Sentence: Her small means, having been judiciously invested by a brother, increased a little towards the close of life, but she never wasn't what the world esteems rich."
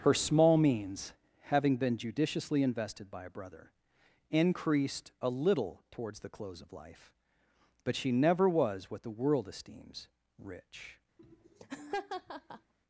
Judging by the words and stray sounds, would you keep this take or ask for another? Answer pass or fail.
fail